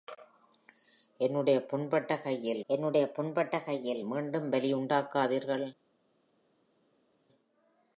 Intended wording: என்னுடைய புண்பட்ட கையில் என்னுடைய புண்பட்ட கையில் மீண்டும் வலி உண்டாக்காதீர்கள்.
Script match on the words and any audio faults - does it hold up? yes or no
yes